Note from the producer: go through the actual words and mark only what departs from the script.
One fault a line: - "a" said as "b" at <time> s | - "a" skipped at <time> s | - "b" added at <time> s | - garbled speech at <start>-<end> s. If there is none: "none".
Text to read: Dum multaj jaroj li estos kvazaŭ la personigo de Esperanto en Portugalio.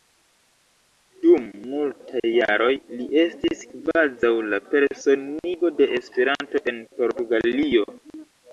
- "estos" said as "estis" at 3.2 s